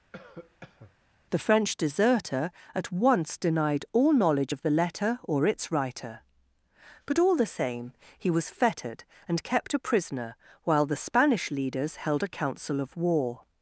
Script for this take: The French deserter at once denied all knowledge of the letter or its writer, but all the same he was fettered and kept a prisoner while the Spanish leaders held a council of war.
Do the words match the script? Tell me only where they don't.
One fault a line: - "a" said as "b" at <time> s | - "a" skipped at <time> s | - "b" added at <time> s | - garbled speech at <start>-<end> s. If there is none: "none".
none